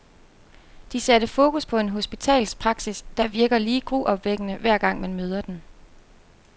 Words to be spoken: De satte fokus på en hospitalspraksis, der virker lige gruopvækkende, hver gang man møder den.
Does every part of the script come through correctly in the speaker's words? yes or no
yes